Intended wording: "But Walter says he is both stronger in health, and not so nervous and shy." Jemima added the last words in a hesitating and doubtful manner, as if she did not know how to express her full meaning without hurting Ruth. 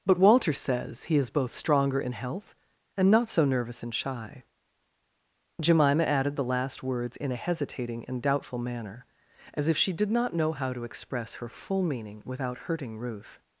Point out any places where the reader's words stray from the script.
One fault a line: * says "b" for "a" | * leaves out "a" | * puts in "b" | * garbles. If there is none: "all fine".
all fine